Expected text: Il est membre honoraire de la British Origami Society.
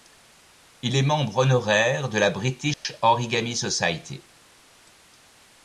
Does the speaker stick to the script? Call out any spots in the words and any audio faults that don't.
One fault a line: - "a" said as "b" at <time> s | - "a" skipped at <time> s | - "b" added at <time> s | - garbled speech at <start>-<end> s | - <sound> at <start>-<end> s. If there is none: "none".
- dropout at 2.7-2.8 s